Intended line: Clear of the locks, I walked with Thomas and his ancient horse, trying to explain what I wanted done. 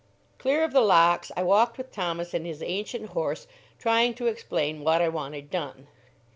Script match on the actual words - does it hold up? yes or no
yes